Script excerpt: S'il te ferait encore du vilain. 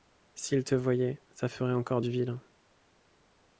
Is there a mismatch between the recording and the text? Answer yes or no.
yes